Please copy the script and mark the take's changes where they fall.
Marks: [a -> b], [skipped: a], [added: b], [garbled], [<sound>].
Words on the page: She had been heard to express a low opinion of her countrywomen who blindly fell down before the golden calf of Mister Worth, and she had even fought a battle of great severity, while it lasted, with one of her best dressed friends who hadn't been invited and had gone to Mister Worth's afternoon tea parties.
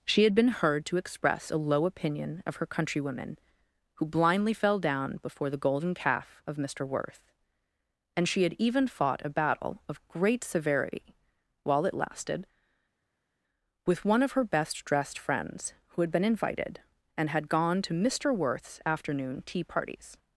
She had been heard to express a low opinion of her countrywomen who blindly fell down before the golden calf of Mister Worth, and she had even fought a battle of great severity, while it lasted, with one of her best dressed friends who [hadn't -> had] been invited and had gone to Mister Worth's afternoon tea parties.